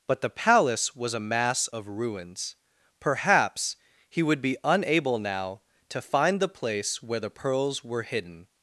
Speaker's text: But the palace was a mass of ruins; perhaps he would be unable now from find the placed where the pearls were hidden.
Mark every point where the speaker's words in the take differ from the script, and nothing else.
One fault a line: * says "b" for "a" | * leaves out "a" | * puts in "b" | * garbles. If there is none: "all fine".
* says "to" for "from"
* says "place" for "placed"